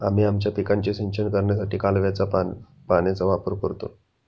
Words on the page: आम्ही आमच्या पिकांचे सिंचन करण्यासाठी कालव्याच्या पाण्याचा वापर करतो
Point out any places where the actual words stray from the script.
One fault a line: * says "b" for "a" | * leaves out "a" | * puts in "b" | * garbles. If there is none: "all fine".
all fine